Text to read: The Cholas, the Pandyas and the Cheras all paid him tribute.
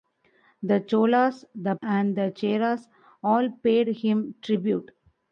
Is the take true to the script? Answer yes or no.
no